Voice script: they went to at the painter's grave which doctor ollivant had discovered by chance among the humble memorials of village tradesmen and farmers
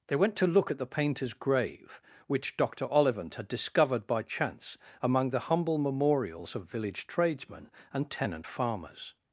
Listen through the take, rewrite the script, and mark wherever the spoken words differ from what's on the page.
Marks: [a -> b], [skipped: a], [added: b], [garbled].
they went to [added: look] at the painter's grave which doctor ollivant had discovered by chance among the humble memorials of village tradesmen and [added: tenant] farmers